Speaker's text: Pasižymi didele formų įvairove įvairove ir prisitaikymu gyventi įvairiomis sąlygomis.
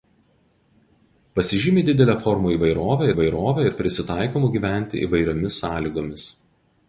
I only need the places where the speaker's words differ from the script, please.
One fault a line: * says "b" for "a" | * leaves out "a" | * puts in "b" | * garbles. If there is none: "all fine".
all fine